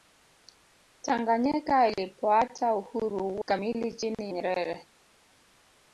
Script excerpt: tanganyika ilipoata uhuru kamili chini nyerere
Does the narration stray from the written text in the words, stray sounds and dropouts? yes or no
no